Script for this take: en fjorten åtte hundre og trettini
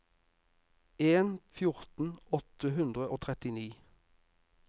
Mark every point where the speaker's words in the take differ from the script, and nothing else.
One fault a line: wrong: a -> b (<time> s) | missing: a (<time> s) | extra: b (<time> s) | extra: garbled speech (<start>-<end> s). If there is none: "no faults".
no faults